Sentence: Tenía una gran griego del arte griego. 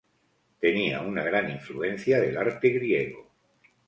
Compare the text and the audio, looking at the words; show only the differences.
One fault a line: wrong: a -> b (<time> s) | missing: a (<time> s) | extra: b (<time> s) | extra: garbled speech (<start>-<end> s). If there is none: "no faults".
wrong: griego -> influencia (1.5 s)